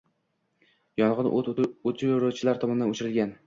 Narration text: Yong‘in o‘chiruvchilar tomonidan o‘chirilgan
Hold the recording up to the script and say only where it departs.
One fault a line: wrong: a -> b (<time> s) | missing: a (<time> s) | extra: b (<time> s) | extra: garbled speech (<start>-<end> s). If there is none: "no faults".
extra: o‘t (1.4 s)